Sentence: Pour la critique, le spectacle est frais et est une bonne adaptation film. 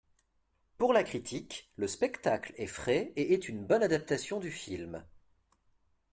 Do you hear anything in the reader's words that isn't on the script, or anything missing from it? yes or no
yes